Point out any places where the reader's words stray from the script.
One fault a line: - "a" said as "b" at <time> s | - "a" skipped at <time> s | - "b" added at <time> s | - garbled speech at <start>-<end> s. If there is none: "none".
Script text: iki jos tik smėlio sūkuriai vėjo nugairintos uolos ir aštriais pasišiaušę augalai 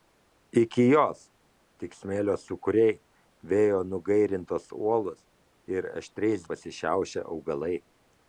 none